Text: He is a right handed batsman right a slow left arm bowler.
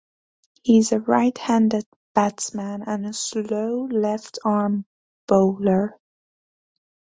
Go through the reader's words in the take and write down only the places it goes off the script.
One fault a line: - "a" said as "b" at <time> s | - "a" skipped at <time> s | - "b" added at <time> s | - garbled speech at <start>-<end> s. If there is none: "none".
- "right" said as "and" at 2.9 s